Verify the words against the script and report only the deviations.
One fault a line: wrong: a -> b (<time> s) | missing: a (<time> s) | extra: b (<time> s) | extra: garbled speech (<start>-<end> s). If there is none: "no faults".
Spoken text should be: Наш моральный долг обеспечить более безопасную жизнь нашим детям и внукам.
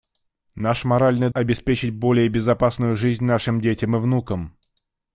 missing: долг (1.3 s)